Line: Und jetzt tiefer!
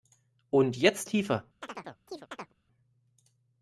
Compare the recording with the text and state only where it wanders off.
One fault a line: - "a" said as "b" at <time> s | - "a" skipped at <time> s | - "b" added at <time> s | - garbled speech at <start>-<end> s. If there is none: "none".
none